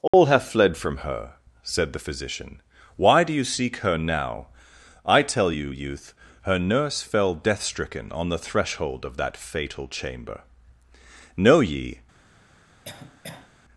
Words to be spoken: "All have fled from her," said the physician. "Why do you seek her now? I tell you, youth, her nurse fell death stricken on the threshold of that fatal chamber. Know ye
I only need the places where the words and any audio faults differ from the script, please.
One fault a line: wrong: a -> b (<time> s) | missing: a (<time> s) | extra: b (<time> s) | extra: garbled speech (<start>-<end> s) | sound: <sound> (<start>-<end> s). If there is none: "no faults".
sound: dropout (0.1-0.1 s)
sound: cough (12.8-13.5 s)